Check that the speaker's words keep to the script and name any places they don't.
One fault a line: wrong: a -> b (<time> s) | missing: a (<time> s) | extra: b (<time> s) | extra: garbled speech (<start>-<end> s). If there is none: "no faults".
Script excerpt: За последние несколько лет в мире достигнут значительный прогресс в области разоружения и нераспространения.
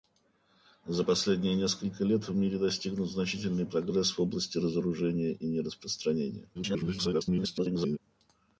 extra: garbled speech (6.5-8.0 s)